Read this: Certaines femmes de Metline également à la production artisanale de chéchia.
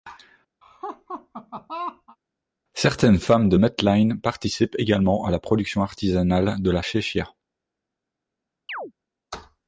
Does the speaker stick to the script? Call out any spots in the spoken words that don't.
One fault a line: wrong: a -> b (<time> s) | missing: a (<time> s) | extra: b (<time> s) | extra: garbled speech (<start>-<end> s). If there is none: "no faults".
extra: participent (4.2 s)
extra: la (6.7 s)